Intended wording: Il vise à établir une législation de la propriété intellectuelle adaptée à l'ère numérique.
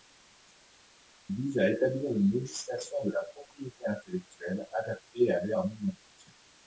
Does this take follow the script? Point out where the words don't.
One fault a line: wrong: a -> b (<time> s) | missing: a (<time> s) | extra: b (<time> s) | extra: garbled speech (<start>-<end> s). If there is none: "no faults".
no faults